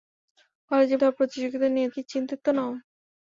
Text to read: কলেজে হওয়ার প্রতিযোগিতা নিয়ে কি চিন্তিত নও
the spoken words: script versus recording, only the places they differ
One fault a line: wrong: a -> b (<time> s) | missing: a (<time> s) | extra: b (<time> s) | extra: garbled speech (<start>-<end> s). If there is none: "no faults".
no faults